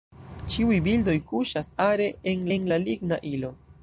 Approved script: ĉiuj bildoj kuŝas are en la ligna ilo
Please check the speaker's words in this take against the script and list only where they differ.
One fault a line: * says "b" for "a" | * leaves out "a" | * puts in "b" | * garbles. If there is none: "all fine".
* puts in "en"